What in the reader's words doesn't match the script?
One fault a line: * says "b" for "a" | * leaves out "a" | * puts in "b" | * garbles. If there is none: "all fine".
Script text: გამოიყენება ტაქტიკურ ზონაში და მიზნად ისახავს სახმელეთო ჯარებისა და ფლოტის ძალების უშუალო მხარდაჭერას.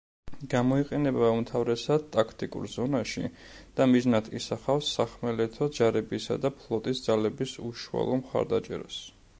* puts in "უმთავრესად"